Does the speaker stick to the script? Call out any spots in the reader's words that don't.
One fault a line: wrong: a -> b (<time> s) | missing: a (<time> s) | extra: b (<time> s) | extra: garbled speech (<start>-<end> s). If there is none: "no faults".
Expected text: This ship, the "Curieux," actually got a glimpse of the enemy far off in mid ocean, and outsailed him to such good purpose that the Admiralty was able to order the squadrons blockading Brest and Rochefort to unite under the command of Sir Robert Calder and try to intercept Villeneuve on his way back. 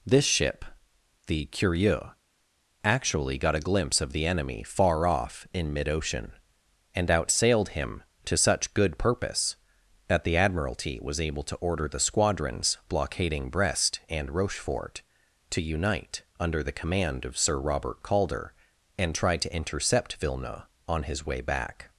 no faults